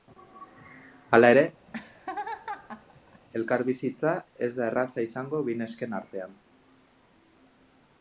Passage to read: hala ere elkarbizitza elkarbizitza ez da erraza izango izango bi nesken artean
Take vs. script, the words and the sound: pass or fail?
fail